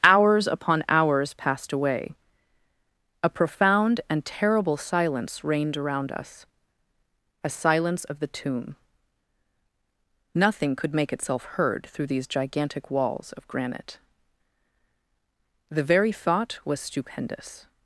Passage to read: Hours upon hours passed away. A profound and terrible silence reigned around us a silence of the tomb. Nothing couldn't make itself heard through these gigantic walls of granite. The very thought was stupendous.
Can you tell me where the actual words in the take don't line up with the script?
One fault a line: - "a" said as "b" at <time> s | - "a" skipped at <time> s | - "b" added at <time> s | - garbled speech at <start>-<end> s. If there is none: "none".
- "couldn't" said as "could" at 10.8 s